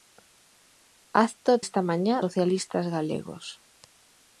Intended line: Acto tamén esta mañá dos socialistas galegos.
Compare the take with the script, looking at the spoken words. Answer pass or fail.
fail